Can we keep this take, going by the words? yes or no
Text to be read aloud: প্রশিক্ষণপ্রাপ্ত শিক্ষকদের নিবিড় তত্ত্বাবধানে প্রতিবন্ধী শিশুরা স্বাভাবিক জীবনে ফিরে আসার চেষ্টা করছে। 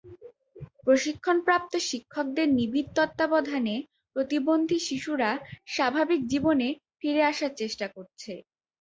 yes